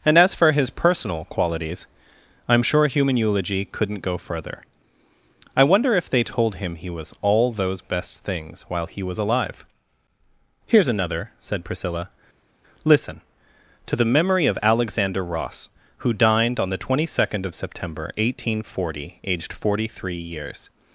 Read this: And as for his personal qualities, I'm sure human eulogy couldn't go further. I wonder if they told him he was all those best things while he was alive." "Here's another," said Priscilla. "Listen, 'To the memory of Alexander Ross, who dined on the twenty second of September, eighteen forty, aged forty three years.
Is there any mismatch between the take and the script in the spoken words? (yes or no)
no